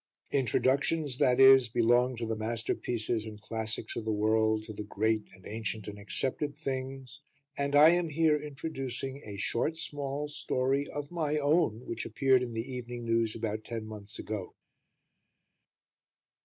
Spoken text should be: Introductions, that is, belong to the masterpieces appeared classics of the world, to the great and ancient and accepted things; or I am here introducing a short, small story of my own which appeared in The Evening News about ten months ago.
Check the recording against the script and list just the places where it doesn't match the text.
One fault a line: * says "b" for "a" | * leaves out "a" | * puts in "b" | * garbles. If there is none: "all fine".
* says "and" for "appeared"
* says "and" for "or"